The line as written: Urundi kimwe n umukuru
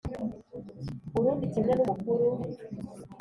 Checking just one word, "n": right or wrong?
right